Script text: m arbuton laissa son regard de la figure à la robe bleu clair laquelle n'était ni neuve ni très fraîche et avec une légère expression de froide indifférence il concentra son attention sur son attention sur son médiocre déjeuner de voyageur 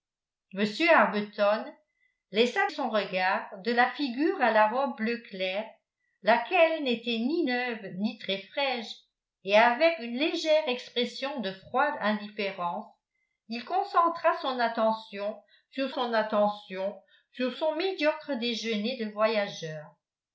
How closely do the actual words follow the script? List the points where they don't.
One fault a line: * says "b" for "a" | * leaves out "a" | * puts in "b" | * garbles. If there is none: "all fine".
all fine